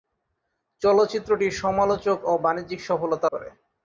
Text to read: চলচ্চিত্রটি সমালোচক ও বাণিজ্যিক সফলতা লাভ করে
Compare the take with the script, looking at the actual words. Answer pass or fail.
fail